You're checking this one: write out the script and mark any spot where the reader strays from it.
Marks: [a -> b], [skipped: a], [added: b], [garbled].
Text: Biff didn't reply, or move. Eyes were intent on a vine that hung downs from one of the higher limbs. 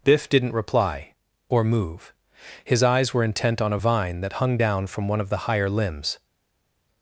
Biff didn't reply, or move. [added: His] Eyes were intent on a vine that hung [downs -> down] from one of the higher limbs.